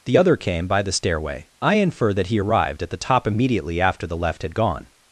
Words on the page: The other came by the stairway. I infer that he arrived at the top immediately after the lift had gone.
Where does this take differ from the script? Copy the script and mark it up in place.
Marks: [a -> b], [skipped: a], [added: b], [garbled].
The other came by the stairway. I infer that he arrived at the top immediately after the [lift -> left] had gone.